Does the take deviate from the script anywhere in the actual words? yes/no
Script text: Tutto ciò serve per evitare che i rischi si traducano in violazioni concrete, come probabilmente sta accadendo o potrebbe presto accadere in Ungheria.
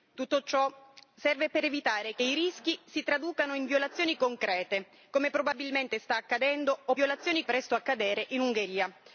yes